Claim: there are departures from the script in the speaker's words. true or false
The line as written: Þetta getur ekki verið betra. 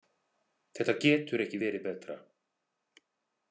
false